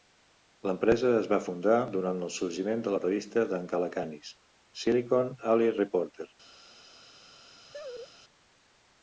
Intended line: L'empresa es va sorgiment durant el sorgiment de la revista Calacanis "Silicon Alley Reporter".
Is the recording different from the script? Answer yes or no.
yes